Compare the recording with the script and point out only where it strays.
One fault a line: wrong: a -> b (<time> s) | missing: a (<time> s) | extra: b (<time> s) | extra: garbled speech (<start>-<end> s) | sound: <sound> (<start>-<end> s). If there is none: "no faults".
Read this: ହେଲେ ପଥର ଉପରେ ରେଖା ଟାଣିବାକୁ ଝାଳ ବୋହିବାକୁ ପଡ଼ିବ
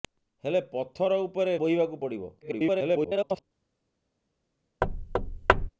missing: ରେଖା ଟାଣିବାକୁ ଝାଳ (1.5 s)
extra: garbled speech (2.4-3.4 s)
sound: thud (4.8-5.7 s)